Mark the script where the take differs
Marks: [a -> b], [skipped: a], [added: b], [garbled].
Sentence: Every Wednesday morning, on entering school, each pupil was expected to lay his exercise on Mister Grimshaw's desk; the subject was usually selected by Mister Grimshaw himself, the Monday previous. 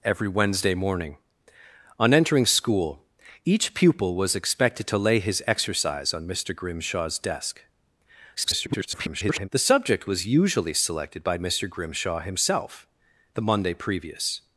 Every Wednesday morning, on entering school, each pupil was expected to lay his exercise on Mister Grimshaw's desk; [garbled] the subject was usually selected by Mister Grimshaw himself, the Monday previous.